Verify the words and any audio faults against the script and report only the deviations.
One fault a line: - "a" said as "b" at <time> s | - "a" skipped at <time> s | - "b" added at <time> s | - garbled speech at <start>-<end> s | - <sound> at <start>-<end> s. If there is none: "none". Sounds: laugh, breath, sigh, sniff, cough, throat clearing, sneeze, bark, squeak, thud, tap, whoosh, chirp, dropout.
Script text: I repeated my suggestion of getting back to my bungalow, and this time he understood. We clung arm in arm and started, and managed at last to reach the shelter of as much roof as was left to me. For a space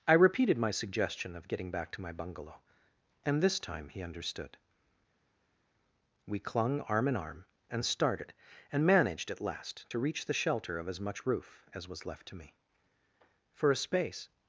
none